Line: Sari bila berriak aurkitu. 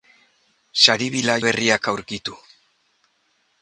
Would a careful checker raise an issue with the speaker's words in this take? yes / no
no